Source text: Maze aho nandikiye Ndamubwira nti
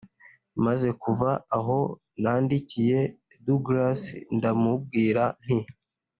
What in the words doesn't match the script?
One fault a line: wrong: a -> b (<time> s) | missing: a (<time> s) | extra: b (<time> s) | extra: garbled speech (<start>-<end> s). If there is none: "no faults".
extra: kuva (1.0 s)
extra: Douglas (3.5 s)